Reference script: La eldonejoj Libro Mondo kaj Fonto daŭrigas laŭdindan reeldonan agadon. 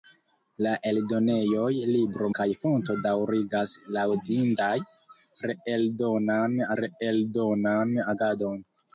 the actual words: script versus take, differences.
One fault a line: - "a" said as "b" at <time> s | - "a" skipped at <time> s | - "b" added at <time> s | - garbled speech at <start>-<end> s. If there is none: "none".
- "Mondo" skipped at 2.3 s
- "reeldonan" added at 6.8 s